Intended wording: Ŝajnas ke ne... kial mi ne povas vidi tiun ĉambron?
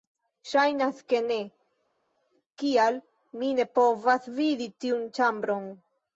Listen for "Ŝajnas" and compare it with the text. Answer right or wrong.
right